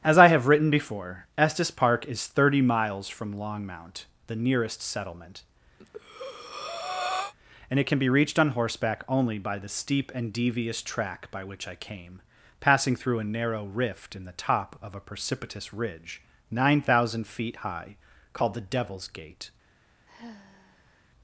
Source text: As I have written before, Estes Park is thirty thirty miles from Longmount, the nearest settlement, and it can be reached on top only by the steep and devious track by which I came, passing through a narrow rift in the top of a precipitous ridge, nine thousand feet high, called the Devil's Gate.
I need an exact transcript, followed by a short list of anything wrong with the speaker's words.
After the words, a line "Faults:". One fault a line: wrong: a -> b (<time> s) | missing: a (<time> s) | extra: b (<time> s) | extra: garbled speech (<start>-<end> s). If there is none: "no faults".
As I have written before, Estes Park is thirty miles from Longmount, the nearest settlement, and it can be reached on horseback only by the steep and devious track by which I came, passing through a narrow rift in the top of a precipitous ridge, nine thousand feet high, called the Devil's Gate.
Faults:
missing: thirty (2.6 s)
wrong: top -> horseback (8.5 s)